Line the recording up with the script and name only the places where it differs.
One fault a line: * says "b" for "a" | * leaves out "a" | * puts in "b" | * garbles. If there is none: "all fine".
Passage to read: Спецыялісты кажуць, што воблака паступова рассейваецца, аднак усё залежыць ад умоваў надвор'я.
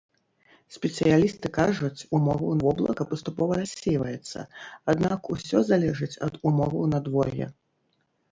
* says "умоваў" for "што"